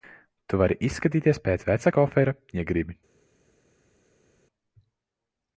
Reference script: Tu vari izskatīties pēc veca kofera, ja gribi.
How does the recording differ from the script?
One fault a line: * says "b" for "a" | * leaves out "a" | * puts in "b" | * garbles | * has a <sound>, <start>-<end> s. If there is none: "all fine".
all fine